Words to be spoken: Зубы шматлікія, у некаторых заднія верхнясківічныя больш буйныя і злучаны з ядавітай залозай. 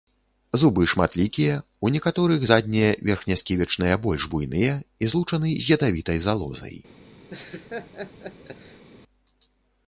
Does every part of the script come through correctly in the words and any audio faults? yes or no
no